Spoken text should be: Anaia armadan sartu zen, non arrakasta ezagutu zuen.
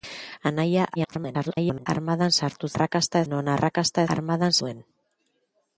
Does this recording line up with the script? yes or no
no